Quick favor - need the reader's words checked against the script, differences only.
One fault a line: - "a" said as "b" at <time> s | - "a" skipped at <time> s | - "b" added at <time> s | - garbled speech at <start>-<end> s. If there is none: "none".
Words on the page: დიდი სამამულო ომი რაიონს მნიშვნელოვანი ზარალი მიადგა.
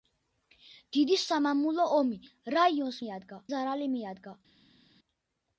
- "მნიშვნელოვანი" said as "მიადგა" at 3.0 s